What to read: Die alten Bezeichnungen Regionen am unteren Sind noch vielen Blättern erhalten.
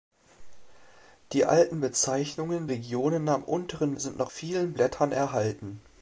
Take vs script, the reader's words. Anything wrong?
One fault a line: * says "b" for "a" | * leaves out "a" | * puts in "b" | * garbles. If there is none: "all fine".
all fine